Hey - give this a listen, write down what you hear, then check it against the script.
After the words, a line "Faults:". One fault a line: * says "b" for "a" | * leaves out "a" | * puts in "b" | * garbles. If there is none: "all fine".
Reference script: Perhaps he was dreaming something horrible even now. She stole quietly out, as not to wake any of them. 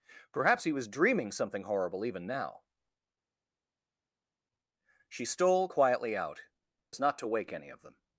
Perhaps he was dreaming something horrible even now. She stole quietly out, as not to wake any of them.
Faults:
all fine